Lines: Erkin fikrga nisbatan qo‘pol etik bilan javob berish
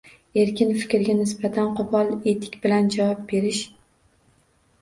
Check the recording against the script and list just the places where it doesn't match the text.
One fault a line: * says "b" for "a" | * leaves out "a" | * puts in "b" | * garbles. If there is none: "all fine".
all fine